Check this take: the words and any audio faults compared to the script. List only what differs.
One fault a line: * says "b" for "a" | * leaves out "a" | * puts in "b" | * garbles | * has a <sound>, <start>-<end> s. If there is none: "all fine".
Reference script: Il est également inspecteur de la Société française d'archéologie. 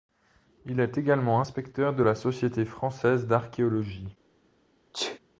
* has a sneeze, 4.9-5.2 s